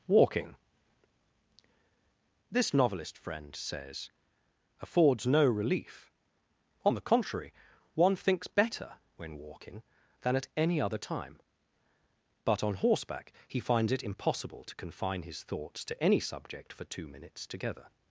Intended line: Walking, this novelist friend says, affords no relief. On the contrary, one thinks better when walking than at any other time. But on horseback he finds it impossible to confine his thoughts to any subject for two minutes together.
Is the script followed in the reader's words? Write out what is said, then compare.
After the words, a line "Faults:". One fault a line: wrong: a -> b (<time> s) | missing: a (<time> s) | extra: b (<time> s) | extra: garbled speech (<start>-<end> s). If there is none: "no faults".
Walking, this novelist friend says, affords no relief. On the contrary, one thinks better when walking than at any other time. But on horseback he finds it impossible to confine his thoughts to any subject for two minutes together.
Faults:
no faults